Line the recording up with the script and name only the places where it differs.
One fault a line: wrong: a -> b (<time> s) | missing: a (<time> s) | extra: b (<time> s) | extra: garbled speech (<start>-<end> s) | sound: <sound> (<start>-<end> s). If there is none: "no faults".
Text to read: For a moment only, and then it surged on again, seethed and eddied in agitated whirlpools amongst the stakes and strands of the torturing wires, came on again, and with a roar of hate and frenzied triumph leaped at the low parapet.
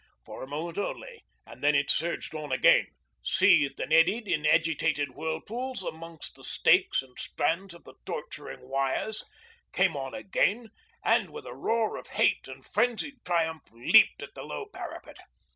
no faults